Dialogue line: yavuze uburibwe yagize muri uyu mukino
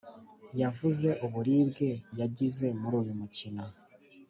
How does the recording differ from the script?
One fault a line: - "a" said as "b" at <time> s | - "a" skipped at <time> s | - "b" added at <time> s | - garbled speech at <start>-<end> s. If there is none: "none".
none